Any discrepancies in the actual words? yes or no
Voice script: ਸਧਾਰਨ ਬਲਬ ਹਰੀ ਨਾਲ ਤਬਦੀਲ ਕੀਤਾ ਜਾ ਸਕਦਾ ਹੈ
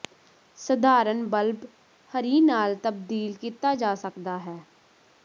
no